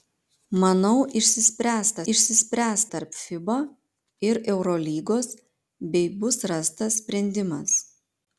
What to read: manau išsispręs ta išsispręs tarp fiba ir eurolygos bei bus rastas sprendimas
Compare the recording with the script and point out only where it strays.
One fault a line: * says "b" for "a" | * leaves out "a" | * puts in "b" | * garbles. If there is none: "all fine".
all fine